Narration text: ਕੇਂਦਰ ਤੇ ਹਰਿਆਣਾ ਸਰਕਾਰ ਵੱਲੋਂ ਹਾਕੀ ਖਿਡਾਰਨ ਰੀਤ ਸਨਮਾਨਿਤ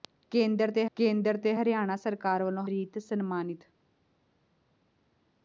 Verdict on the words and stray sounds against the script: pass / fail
fail